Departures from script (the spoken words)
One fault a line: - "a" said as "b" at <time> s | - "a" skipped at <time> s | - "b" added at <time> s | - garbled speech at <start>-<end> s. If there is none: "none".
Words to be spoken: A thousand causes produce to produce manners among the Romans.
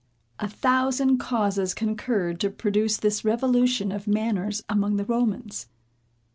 - "produce" said as "concurred" at 1.8 s
- "this revolution of" added at 3.0 s